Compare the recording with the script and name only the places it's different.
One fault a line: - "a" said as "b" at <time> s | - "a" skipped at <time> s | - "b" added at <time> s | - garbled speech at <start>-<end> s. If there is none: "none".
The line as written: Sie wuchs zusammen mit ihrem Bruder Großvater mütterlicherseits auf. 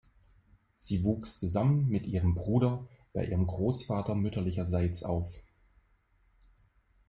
- "bei ihrem" added at 3.1 s